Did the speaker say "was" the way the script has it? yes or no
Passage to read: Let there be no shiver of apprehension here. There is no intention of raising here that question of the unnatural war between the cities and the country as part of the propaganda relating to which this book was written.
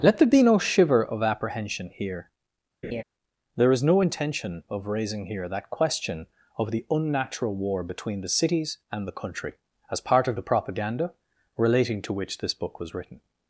yes